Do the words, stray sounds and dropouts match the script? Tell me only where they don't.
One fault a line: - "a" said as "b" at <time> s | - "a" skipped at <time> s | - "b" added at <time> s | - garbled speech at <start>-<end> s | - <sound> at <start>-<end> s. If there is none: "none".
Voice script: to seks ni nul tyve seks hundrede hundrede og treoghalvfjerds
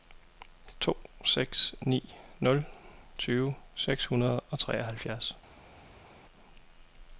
- "hundrede" skipped at 4.4 s